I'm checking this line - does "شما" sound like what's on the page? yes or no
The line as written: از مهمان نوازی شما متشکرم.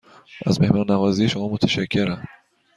yes